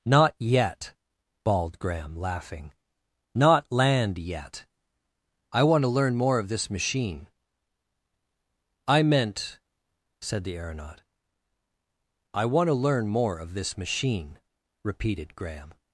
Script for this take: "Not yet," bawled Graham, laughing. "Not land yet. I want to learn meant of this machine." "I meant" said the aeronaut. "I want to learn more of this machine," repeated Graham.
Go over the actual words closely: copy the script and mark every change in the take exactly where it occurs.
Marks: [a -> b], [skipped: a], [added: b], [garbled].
"Not yet," bawled Graham, laughing. "Not land yet. I want to learn [meant -> more] of this machine." "I meant" said the aeronaut. "I want to learn more of this machine," repeated Graham.